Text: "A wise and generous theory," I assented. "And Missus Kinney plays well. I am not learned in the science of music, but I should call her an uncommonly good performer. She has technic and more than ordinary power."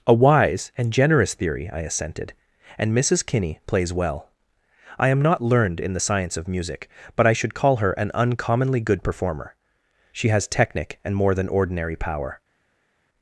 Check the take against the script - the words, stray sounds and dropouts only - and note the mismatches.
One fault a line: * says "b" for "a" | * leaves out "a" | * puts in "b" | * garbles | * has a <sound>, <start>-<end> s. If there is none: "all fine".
all fine